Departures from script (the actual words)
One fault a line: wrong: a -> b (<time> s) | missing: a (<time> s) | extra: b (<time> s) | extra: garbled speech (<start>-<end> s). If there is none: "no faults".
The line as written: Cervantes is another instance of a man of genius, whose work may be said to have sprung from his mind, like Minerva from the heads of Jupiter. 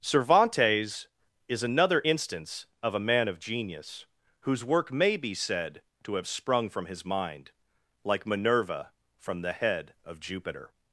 wrong: heads -> head (9.5 s)